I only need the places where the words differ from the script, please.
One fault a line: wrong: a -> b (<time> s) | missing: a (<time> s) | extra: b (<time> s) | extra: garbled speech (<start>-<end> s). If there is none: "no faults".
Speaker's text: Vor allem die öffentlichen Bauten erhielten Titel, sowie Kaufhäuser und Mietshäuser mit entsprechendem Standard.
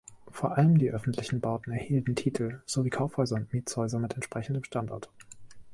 no faults